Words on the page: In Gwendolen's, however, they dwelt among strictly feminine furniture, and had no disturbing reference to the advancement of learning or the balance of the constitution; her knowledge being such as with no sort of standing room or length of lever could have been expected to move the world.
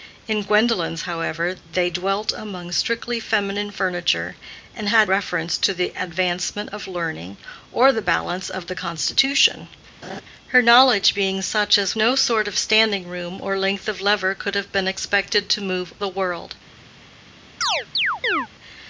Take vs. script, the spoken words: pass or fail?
fail